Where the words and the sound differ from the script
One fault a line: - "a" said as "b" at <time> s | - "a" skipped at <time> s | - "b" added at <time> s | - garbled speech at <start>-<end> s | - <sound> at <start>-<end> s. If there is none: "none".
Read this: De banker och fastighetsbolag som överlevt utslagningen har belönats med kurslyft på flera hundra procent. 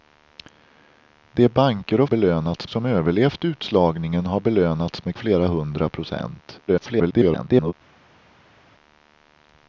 - "fastighetsbolag" said as "belönats" at 2.1 s
- "kurslyft på" skipped at 5.2 s
- garbled speech at 6.7-7.7 s